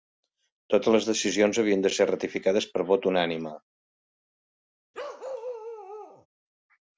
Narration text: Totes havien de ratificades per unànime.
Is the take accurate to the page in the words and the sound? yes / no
no